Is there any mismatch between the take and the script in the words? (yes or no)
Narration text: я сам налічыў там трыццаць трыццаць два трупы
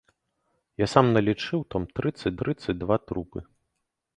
no